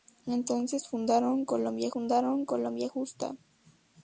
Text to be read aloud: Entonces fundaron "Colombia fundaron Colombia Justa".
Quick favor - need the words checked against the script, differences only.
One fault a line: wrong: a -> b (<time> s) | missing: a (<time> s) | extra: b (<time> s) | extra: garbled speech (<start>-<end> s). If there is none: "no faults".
no faults